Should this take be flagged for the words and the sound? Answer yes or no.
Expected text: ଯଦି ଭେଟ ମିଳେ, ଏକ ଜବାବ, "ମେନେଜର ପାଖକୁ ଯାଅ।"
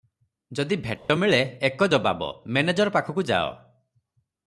yes